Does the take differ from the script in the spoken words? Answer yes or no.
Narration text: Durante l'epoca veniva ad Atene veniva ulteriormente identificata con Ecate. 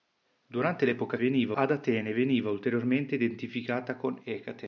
no